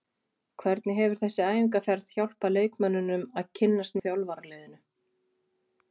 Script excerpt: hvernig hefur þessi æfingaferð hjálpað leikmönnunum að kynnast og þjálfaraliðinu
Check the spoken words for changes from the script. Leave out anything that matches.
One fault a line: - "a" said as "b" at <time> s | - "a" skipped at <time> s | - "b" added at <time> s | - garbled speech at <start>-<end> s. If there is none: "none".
none